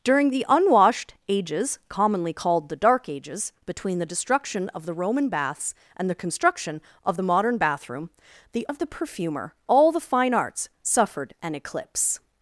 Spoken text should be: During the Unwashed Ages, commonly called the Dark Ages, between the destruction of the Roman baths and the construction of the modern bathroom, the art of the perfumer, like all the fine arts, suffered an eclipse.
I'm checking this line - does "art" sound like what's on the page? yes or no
no